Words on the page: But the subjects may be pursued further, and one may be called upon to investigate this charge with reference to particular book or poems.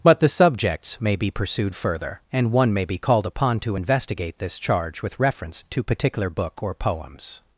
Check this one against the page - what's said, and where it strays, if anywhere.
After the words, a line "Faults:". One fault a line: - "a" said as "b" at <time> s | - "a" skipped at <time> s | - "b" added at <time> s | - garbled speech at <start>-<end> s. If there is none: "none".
But the subjects may be pursued further, and one may be called upon to investigate this charge with reference to particular book or poems.
Faults:
none